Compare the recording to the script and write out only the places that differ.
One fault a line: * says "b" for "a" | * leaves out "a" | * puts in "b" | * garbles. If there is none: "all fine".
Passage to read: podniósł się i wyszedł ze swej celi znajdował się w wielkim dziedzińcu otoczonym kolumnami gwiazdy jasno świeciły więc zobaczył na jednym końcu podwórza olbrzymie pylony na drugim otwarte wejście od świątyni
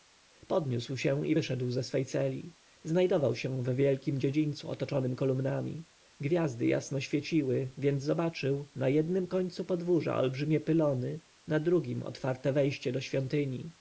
* says "do" for "od"